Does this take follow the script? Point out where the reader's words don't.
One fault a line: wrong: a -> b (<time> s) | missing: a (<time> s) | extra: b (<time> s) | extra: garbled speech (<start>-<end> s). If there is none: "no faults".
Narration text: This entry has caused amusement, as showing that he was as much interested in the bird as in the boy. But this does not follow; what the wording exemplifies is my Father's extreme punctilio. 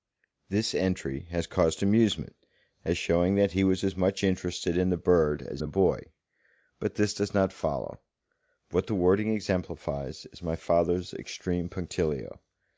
missing: in (5.6 s)